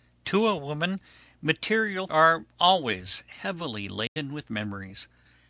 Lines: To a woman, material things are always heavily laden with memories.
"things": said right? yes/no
no